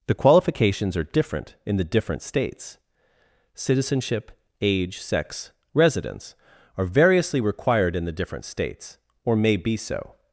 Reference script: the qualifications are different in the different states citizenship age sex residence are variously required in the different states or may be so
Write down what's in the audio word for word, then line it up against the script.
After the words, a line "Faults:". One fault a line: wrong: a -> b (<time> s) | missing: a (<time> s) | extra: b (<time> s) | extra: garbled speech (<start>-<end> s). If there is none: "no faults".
the qualifications are different in the different states citizenship age sex residence are variously required in the different states or may be so
Faults:
no faults